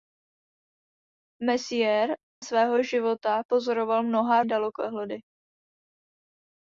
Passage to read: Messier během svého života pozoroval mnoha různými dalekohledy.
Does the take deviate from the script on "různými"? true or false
true